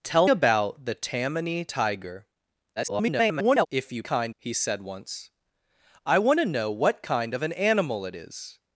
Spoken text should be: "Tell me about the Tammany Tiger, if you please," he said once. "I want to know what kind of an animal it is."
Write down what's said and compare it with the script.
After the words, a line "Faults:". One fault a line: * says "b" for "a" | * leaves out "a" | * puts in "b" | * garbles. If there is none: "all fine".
"Tell about the Tammany Tiger, [garbled] if you kind," he said once. "I want to know what kind of an animal it is."
Faults:
* leaves out "me"
* garbles
* says "kind" for "please"